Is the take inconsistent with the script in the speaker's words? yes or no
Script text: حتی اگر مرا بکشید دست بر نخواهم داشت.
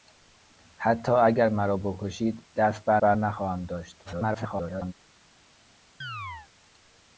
yes